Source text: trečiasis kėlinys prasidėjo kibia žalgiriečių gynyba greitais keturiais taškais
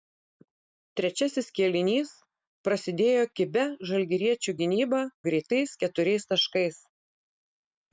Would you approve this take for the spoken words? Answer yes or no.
yes